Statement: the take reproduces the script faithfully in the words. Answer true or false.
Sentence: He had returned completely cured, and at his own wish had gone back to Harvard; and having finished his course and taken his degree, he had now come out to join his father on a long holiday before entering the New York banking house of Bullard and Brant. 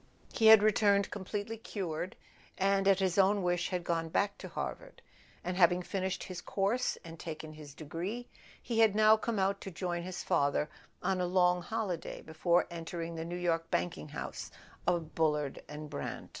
true